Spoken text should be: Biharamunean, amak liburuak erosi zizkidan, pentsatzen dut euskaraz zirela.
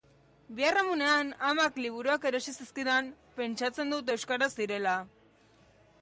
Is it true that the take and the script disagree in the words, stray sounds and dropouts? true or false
false